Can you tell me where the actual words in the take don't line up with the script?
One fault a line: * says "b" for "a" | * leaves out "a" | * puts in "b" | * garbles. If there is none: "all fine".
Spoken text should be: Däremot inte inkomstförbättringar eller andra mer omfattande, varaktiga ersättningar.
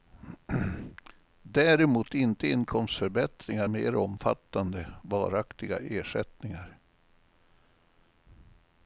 * leaves out "eller andra"